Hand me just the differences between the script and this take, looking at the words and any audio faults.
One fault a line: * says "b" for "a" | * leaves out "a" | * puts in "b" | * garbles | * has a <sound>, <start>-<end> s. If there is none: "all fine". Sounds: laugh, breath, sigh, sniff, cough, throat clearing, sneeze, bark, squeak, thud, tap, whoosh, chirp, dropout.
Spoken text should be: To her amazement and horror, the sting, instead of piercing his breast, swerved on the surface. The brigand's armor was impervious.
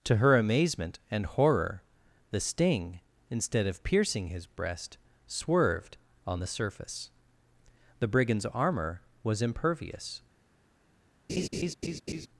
* has a laugh, 11.3-12.3 s